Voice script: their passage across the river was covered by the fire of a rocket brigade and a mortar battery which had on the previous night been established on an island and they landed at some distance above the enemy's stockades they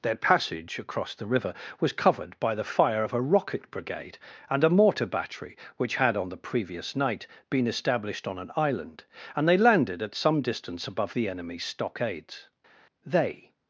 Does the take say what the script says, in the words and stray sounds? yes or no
yes